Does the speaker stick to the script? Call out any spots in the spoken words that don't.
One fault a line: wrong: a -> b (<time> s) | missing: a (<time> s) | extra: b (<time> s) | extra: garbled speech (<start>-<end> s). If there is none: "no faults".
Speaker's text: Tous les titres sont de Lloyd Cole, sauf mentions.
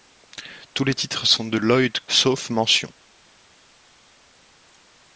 missing: Cole (2.0 s)